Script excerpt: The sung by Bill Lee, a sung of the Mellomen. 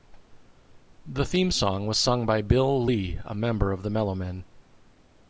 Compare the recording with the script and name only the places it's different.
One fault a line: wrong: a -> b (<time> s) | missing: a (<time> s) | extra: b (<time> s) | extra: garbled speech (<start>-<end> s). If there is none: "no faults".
extra: theme song was (1.2 s)
wrong: sung -> member (3.3 s)